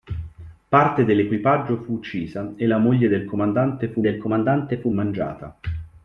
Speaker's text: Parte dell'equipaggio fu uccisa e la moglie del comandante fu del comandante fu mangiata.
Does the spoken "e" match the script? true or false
true